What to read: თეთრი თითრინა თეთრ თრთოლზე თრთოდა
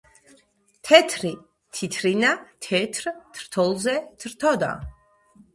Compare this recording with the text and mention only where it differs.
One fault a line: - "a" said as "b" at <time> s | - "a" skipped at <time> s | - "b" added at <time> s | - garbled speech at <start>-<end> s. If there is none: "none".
none